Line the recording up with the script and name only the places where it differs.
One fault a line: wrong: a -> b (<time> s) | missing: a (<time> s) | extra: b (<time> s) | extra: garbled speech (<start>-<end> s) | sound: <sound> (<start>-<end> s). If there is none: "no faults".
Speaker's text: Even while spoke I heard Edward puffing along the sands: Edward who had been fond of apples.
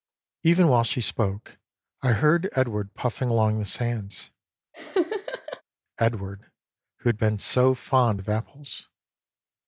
extra: she (0.8 s)
sound: laugh (4.7-5.6 s)
extra: so (7.4 s)